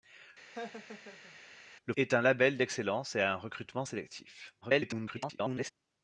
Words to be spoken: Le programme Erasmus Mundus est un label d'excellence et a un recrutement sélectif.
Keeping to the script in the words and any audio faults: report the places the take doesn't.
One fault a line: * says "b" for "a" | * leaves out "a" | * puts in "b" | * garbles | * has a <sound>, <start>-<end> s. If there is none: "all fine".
* has a laugh, 0.5-1.4 s
* leaves out "programme Erasmus Mundus"
* garbles